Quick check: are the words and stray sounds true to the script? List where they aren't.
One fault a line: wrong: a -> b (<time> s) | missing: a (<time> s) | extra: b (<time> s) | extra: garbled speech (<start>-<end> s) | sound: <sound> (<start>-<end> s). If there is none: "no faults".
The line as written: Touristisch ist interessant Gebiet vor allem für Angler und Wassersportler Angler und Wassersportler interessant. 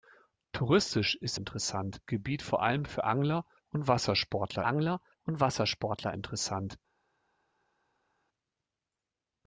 no faults